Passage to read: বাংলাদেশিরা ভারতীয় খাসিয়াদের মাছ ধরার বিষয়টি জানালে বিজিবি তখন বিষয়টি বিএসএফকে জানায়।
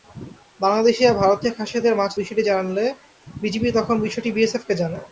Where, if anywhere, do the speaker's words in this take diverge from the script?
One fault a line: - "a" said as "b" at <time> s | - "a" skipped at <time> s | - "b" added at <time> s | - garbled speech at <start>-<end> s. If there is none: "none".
- "ধরার" skipped at 2.1 s